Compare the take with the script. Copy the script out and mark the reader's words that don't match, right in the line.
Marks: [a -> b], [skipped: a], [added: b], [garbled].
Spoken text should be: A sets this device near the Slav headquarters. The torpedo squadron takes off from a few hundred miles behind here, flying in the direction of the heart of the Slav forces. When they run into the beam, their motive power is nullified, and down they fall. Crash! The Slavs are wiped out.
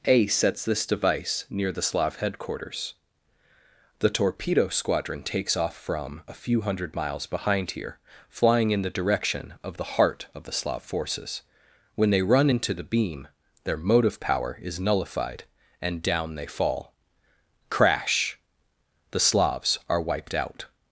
A sets this device near the Slav headquarters. The torpedo squadron takes off from a few hundred miles behind here, flying in the direction of the heart of the Slav forces. When they run into the beam, their motive power is nullified, and down they fall. Crash! The Slavs are wiped out.